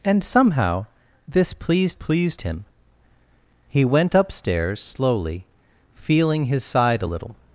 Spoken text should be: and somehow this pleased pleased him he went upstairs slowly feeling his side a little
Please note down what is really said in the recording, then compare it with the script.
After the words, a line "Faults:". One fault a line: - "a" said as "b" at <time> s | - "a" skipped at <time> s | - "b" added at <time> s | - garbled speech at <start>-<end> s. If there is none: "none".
and somehow this pleased pleased him he went upstairs slowly feeling his side a little
Faults:
none